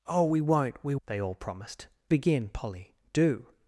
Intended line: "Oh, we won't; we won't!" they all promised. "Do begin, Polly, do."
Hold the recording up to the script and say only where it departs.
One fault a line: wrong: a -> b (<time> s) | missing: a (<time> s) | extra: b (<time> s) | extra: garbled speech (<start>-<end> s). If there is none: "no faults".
missing: won't (0.9 s)
missing: Do (1.9 s)